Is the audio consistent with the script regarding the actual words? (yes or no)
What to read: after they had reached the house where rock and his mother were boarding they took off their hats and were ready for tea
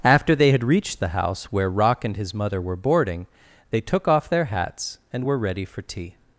yes